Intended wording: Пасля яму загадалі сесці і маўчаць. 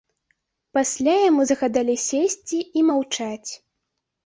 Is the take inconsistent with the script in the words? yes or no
no